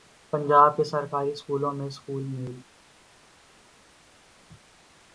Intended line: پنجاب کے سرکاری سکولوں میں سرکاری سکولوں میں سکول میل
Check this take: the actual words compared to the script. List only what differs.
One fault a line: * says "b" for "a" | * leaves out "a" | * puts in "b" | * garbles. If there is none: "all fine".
* leaves out "سرکاری سکولوں میں"